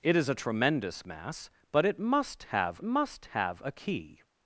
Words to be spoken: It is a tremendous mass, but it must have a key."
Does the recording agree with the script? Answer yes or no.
no